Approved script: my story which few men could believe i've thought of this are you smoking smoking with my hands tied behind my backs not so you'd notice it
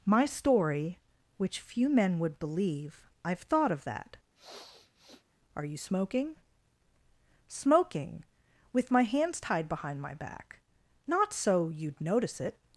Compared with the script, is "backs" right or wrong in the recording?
wrong